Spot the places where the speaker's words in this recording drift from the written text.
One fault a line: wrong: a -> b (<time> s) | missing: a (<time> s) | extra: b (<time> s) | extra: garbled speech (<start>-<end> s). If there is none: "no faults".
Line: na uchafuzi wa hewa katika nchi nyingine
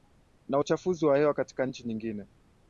no faults